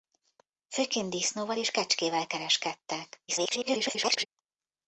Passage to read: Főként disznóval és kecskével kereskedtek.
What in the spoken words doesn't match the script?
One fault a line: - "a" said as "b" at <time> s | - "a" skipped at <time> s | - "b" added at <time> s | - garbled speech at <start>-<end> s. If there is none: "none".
- garbled speech at 3.3-4.3 s